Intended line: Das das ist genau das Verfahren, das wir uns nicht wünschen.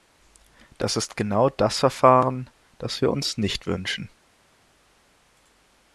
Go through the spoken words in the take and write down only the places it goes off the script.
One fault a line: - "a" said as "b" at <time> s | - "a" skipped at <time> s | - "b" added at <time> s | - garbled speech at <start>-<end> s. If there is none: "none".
- "das" skipped at 1.0 s